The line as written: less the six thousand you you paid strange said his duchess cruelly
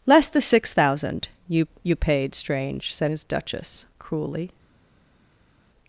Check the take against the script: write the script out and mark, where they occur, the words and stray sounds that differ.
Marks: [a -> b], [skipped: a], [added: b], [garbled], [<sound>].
less the six thousand you you paid strange said his duchess cruelly